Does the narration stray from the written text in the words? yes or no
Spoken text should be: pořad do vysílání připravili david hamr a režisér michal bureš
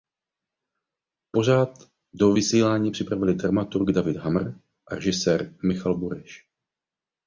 yes